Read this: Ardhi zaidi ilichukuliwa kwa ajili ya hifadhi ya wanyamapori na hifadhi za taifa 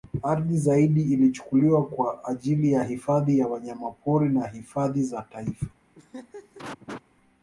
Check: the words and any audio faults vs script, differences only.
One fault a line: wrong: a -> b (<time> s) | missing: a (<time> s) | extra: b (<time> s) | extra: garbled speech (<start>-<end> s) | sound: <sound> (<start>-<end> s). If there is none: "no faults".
sound: laugh (5.9-7.0 s)